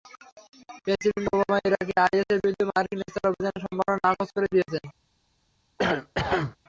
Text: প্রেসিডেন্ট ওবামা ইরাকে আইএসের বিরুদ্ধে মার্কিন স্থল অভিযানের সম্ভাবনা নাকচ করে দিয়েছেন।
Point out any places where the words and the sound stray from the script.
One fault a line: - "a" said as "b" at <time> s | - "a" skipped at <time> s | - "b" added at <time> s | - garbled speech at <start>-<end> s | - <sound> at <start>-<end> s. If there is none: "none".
- cough at 5.8-6.6 s